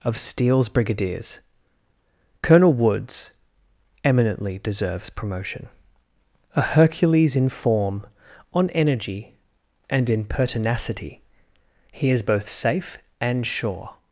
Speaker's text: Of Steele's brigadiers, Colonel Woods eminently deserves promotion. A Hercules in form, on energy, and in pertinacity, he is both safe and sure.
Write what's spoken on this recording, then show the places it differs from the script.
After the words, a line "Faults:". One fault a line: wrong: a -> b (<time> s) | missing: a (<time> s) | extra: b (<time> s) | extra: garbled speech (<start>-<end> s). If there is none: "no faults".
Of Steele's brigadiers, Colonel Woods eminently deserves promotion. A Hercules in form, on energy, and in pertinacity, he is both safe and sure.
Faults:
no faults